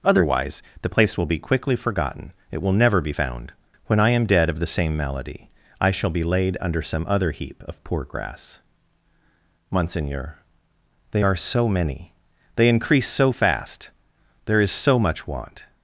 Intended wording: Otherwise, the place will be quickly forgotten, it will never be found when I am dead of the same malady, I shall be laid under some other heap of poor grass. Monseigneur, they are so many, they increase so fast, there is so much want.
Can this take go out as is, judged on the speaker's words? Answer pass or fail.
pass